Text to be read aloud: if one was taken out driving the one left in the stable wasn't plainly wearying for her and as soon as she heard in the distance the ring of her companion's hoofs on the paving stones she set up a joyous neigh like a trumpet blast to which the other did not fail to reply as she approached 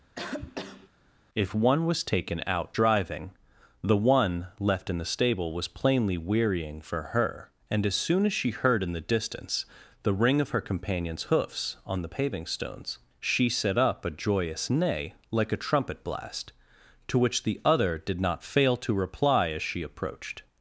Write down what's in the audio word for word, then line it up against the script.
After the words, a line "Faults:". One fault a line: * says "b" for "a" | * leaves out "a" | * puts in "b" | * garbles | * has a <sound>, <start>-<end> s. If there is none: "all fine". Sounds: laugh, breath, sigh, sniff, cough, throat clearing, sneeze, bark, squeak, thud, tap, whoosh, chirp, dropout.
if one was taken out driving the one left in the stable was plainly wearying for her and as soon as she heard in the distance the ring of her companion's hoofs on the paving stones she set up a joyous neigh like a trumpet blast to which the other did not fail to reply as she approached
Faults:
* has a cough, 0.1-0.9 s
* says "was" for "wasn't"